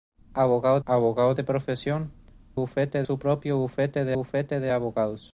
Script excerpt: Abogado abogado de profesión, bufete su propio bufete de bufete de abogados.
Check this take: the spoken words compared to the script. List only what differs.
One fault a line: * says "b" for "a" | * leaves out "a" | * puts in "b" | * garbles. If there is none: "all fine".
all fine